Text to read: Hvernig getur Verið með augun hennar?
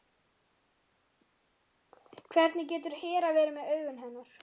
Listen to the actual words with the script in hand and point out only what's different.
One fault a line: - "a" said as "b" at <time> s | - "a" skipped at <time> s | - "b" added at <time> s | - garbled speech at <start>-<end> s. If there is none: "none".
- "Hera" added at 3.0 s